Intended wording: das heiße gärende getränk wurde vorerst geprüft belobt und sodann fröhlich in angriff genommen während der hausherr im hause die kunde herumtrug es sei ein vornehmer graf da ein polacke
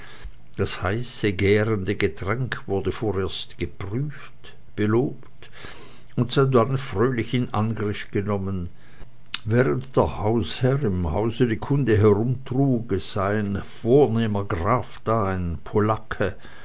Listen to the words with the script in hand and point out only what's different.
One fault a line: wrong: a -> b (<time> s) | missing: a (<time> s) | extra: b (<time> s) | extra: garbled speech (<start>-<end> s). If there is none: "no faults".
no faults